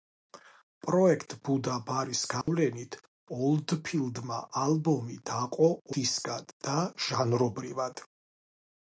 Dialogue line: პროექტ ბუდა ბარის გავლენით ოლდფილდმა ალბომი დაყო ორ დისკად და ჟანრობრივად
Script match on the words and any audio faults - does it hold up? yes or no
no